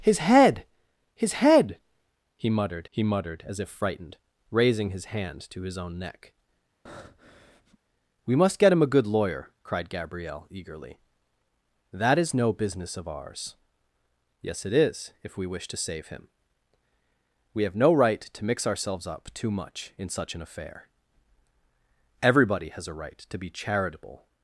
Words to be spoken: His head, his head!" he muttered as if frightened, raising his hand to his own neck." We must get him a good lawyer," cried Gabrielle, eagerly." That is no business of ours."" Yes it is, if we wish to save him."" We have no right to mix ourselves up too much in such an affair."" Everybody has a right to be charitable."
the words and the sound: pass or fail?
fail